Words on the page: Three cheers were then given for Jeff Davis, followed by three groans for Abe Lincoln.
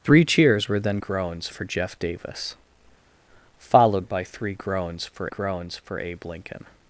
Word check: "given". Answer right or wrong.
wrong